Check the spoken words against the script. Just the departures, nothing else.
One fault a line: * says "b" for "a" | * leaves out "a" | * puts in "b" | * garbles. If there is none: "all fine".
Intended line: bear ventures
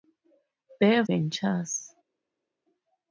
all fine